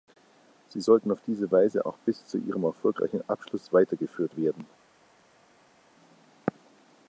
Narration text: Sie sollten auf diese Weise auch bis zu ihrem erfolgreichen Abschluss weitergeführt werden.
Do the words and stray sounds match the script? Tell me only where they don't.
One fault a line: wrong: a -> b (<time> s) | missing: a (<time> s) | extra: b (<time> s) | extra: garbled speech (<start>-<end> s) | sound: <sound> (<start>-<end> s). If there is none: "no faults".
no faults